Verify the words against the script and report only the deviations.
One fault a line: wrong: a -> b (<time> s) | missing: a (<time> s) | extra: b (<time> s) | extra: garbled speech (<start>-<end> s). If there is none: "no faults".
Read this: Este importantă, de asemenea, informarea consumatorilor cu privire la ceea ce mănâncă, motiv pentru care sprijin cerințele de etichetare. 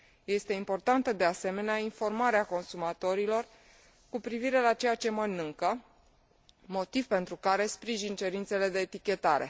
no faults